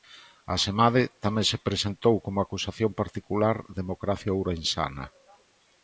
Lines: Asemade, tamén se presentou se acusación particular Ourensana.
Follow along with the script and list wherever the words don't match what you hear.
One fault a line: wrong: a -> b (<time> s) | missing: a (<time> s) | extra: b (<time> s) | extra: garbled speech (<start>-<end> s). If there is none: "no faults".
wrong: se -> como (2.2 s)
extra: Democracia (3.8 s)